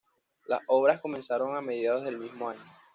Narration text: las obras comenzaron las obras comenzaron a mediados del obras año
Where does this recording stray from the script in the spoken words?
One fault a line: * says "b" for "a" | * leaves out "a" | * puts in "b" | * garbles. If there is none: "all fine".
* leaves out "las obras comenzaron"
* says "mismo" for "obras"